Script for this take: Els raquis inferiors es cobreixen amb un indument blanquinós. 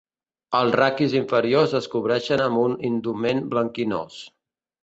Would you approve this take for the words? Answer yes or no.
yes